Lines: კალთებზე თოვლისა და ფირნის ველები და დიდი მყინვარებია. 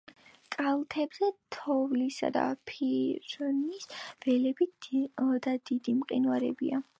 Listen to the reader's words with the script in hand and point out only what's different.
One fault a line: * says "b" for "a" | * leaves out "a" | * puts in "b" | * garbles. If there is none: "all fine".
all fine